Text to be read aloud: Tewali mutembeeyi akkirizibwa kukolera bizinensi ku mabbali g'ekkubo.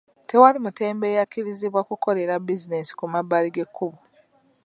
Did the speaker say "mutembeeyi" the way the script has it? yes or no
yes